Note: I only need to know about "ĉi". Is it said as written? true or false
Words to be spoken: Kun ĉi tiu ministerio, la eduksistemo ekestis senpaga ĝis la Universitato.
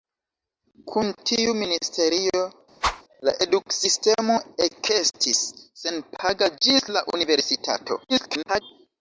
false